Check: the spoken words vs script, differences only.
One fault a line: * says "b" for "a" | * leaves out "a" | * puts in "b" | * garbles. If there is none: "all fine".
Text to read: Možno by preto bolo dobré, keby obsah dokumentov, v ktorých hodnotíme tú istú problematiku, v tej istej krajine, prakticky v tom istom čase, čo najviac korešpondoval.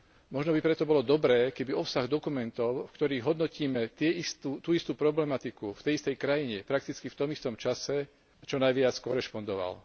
all fine